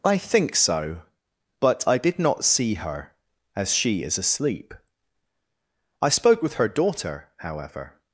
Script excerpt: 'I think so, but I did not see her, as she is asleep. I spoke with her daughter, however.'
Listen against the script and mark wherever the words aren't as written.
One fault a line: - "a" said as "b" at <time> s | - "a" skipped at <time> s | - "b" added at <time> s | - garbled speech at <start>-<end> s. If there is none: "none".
none